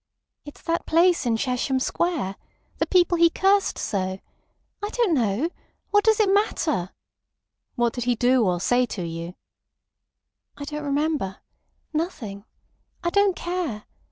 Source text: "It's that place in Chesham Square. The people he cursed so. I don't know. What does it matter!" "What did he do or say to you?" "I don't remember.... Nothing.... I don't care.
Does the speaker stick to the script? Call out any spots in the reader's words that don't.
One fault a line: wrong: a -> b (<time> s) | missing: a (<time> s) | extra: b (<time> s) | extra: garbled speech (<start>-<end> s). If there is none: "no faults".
no faults